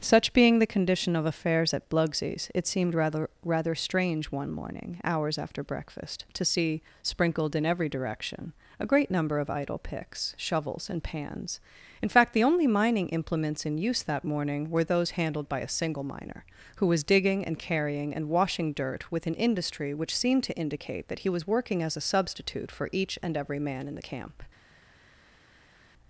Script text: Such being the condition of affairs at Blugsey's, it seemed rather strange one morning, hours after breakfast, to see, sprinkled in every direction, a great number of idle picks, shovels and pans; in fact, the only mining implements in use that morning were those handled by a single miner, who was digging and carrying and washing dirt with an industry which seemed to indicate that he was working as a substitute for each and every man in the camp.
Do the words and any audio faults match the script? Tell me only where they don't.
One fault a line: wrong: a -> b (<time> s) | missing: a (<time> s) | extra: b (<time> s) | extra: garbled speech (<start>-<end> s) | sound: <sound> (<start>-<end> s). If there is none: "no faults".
extra: rather (3.5 s)